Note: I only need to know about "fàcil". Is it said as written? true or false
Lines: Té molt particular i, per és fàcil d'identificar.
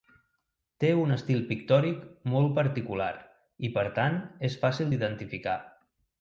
true